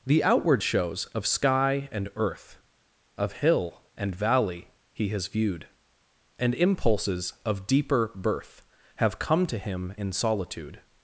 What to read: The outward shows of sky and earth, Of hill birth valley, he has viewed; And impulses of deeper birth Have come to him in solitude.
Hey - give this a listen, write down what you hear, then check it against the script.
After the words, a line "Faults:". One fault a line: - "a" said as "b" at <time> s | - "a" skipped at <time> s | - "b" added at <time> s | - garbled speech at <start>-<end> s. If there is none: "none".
The outward shows of sky and earth, Of hill and valley, he has viewed; And impulses of deeper birth Have come to him in solitude.
Faults:
- "birth" said as "and" at 4.0 s